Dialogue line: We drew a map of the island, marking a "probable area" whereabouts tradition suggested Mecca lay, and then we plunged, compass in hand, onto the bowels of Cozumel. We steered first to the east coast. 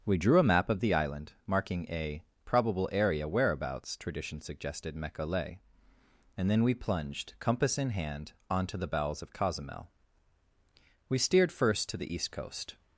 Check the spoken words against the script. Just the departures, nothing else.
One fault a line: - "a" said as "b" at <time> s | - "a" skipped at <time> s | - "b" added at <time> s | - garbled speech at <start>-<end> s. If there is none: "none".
none